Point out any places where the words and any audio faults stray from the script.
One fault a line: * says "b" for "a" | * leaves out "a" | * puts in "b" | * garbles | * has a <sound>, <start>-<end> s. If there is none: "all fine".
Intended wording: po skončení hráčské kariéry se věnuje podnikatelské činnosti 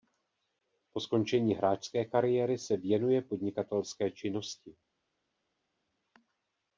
all fine